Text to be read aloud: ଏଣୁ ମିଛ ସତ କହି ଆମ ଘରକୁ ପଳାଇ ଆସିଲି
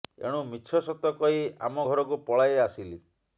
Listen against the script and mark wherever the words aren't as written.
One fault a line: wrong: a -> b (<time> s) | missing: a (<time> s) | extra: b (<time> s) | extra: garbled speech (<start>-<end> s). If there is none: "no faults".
no faults